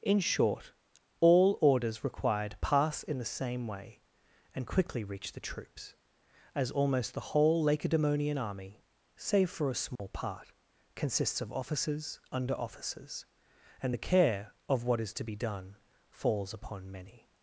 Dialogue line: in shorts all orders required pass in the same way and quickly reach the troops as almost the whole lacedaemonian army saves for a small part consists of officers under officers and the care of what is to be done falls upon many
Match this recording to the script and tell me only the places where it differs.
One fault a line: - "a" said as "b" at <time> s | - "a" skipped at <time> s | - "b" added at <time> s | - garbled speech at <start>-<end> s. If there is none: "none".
- "shorts" said as "short" at 0.2 s
- "saves" said as "save" at 9.2 s